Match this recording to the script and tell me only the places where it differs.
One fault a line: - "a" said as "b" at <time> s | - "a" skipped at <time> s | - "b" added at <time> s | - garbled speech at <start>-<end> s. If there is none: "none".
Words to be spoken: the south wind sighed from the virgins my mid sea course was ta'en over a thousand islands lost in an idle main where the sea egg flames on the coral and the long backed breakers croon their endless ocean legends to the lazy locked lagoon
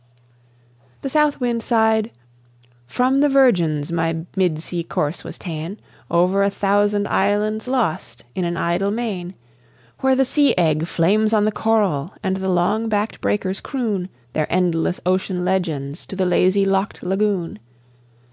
none